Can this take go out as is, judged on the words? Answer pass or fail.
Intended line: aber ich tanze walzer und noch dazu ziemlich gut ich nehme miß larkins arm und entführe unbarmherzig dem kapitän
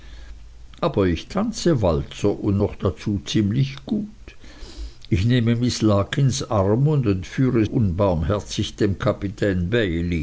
pass